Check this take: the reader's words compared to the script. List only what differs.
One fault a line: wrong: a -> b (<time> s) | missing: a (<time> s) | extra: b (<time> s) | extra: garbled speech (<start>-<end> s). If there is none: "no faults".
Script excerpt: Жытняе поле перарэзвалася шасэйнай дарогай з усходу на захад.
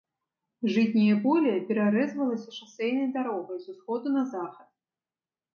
no faults